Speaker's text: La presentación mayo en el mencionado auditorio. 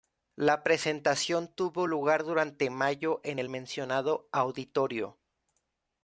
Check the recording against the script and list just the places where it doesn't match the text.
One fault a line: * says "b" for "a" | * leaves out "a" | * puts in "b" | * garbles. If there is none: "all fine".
* puts in "tuvo lugar durante"